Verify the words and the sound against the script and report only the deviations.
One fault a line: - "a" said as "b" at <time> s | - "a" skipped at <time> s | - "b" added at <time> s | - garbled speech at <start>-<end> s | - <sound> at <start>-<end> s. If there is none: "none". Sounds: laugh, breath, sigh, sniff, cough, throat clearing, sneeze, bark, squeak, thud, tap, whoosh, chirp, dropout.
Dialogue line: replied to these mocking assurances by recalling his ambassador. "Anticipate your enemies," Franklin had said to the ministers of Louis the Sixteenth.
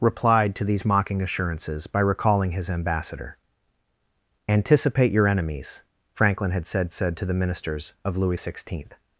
- "said" added at 6.9 s
- "the" skipped at 8.4 s